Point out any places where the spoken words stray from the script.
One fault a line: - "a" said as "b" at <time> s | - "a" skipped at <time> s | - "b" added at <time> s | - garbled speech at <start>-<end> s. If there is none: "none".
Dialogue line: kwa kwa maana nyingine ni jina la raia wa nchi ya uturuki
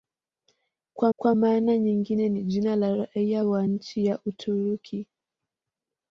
none